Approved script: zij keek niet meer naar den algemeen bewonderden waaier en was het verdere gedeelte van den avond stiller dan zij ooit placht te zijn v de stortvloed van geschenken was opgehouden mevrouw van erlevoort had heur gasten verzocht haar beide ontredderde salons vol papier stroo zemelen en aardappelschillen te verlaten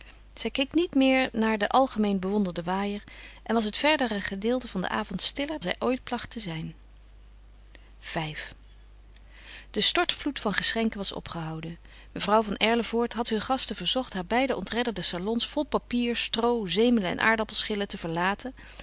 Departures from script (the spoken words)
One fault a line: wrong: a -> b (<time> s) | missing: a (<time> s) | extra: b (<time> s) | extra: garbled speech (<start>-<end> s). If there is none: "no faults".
missing: dan (5.6 s)